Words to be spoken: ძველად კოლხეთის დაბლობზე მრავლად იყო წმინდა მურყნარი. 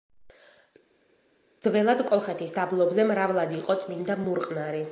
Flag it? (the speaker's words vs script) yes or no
no